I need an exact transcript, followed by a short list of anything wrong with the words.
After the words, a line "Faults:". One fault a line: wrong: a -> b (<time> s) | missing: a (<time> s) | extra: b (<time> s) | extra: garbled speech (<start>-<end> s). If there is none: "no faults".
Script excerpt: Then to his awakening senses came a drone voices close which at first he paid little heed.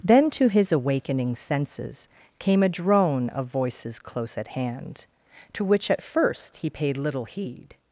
Then to his awakening senses came a drone of voices close at hand, to which at first he paid little heed.
Faults:
extra: of (3.3 s)
extra: at hand to (4.3 s)